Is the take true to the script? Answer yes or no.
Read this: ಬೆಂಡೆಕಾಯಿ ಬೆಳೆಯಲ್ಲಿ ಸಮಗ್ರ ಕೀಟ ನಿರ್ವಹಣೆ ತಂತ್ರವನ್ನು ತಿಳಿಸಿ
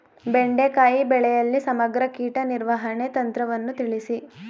yes